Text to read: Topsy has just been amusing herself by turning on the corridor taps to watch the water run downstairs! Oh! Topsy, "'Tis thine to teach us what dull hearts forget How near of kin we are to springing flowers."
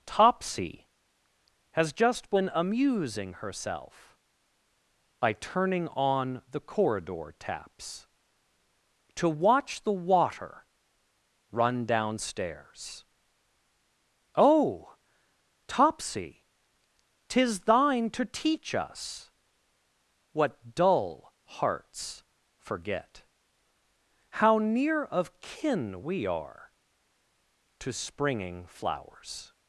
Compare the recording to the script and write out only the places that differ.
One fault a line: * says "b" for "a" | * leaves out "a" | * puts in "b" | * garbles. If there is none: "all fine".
all fine